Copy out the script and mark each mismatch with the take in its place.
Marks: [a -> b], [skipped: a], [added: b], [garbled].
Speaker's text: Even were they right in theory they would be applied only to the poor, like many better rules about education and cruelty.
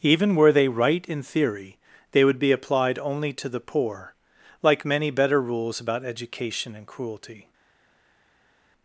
Even were they right in theory they would be applied only to the poor, like many better rules about education and cruelty.